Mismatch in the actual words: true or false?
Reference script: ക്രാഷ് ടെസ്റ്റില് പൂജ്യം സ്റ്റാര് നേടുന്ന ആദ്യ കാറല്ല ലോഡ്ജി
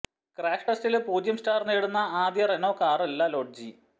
true